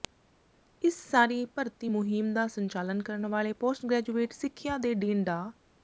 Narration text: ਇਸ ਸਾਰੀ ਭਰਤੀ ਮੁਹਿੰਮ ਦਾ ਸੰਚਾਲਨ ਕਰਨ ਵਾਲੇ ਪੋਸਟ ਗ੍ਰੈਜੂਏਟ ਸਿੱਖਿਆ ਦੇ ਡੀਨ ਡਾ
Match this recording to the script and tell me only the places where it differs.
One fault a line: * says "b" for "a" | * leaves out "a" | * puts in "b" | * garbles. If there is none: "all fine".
all fine